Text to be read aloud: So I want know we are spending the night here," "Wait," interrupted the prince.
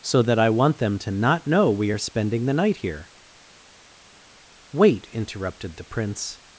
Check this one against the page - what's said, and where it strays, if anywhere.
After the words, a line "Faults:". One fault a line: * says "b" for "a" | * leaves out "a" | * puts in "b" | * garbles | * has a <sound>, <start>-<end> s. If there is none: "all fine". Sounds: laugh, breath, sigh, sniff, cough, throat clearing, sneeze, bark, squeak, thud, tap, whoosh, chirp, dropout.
So that I want them to not know we are spending the night here," "Wait," interrupted the prince.
Faults:
* puts in "that"
* puts in "them to not"